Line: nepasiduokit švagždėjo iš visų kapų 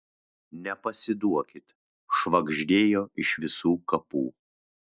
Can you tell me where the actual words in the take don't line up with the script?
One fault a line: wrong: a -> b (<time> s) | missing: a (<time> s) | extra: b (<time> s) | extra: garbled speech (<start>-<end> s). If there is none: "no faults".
no faults